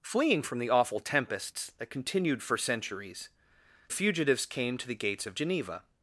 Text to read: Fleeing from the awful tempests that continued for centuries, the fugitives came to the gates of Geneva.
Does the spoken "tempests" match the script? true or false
true